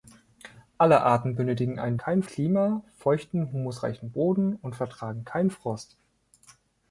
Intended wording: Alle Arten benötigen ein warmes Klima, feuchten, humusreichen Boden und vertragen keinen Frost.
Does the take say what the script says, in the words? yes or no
no